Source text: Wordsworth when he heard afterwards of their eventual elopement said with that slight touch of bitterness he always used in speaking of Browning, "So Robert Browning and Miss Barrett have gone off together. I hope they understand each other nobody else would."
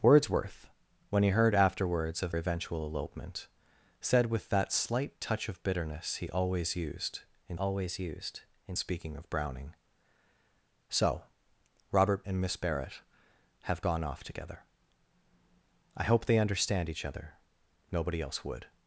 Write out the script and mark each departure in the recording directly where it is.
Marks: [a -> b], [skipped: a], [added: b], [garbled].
Wordsworth when he heard afterwards of [skipped: their] eventual elopement said with that slight touch of bitterness he always used in [added: always used in] speaking of Browning, "So Robert [skipped: Browning] and Miss Barrett have gone off together. I hope they understand each other nobody else would."